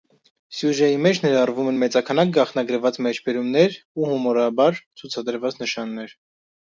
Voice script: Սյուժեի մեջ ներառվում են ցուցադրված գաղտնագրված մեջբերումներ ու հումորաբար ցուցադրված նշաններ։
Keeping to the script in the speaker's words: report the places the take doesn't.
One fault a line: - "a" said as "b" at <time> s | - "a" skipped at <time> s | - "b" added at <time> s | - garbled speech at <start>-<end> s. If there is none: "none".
- "ցուցադրված" said as "մեծաքանակ" at 1.8 s